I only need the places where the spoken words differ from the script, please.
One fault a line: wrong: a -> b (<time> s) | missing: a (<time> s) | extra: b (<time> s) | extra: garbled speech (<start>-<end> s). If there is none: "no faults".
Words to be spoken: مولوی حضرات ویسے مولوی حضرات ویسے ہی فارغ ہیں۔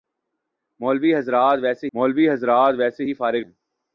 no faults